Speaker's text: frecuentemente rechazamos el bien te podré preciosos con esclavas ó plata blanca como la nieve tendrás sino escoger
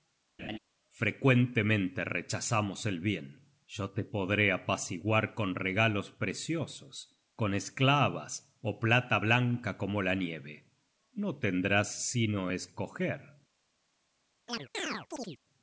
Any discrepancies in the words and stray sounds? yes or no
yes